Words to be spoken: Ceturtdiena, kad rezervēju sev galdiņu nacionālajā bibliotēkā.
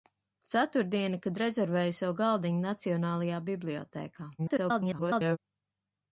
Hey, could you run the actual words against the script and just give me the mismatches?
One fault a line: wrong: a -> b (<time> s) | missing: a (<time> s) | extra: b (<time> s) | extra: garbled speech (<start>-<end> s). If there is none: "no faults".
extra: garbled speech (4.4-5.4 s)